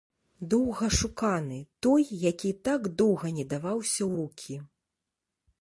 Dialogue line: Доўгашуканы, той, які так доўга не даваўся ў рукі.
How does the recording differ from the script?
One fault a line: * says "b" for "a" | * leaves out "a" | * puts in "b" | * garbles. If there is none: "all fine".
all fine